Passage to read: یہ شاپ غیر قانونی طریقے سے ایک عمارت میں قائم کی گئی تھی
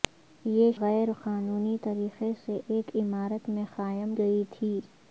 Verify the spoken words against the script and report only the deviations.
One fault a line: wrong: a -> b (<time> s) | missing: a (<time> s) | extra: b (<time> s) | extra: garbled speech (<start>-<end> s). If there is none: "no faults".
missing: شاپ (0.7 s)
missing: کی (4.2 s)